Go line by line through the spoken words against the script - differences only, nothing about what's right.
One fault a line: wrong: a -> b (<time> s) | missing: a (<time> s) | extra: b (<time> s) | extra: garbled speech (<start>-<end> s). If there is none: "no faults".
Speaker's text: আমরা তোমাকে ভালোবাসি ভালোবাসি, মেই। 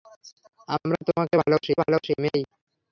no faults